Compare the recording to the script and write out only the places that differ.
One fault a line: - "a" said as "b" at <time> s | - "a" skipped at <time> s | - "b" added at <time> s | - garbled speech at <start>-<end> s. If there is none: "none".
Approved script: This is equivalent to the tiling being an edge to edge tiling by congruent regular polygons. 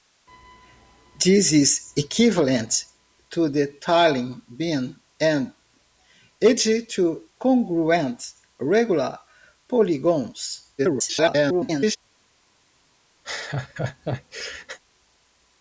- "edge tiling by" skipped at 7.3 s
- garbled speech at 10.8-12.0 s